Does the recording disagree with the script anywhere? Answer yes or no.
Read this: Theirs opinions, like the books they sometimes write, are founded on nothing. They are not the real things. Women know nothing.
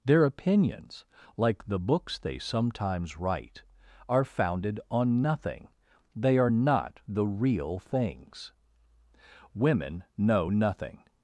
yes